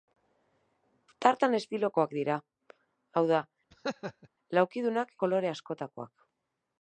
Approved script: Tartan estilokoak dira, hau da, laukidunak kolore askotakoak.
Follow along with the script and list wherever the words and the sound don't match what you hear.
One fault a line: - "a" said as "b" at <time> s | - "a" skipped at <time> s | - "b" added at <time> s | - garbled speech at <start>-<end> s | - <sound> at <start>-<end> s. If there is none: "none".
- laugh at 3.7-4.3 s